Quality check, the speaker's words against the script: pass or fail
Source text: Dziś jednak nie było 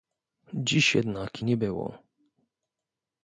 pass